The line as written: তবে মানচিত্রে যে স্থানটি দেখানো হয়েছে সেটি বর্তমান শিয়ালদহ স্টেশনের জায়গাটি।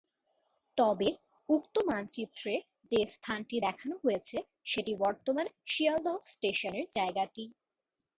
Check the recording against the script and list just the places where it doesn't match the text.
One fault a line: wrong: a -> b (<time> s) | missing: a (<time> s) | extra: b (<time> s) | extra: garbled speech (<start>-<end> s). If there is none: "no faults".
extra: উক্ত (1.5 s)